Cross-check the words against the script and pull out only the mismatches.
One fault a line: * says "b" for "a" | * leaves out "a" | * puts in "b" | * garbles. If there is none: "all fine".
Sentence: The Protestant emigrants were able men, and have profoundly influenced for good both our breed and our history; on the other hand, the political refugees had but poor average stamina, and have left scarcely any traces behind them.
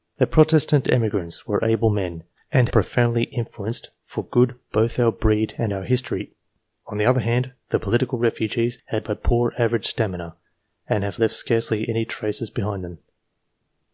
* leaves out "have"